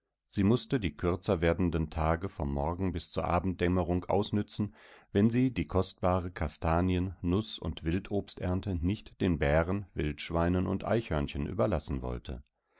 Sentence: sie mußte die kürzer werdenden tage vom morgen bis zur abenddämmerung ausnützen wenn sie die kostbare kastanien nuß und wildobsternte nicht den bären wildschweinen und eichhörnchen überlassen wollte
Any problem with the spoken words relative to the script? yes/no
no